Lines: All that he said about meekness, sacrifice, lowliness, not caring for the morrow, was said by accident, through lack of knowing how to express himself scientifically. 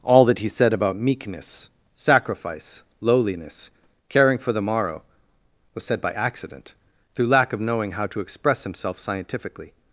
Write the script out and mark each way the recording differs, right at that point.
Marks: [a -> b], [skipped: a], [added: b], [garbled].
All that he said about meekness, sacrifice, lowliness, [skipped: not] caring for the morrow, was said by accident, through lack of knowing how to express himself scientifically.